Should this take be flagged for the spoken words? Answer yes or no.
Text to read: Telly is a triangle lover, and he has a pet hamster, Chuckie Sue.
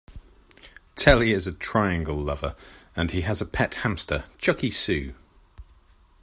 no